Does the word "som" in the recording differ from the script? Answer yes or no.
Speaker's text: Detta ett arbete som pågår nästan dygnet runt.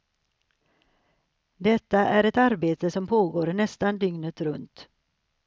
no